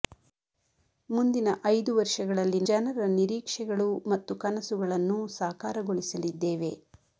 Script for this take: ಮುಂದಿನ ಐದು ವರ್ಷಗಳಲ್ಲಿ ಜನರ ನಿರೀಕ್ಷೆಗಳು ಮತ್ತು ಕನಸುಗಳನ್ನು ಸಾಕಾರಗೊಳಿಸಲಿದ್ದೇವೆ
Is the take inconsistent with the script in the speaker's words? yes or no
no